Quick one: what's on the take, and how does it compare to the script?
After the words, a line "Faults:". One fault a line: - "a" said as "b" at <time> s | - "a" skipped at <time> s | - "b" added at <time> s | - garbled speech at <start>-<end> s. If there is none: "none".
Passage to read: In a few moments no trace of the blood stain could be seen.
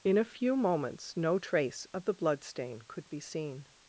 In a few moments no trace of the blood stain could be seen.
Faults:
none